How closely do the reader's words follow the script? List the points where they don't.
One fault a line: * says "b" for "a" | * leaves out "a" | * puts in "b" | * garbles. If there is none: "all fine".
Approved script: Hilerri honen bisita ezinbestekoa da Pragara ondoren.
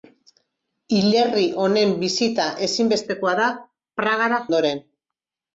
all fine